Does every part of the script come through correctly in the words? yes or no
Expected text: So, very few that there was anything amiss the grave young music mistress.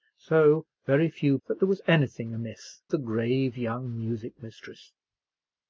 yes